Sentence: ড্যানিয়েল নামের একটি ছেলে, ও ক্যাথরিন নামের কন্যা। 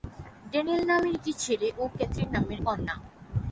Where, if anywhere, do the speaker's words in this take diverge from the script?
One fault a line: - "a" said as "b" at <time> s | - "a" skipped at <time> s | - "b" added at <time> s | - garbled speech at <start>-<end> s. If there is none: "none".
none